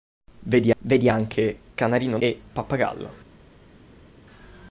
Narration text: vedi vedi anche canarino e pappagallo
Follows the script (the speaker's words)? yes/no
yes